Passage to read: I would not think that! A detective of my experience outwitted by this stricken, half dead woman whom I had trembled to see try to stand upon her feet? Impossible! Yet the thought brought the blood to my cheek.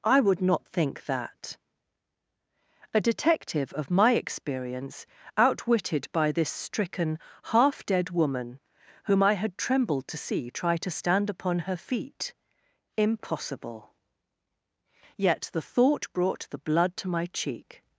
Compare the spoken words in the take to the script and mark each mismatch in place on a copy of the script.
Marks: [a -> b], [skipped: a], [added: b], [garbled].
I would not think that! A detective of my experience outwitted by this stricken, half dead woman whom I had trembled to see try to stand upon her feet? Impossible! Yet the thought brought the blood to my cheek.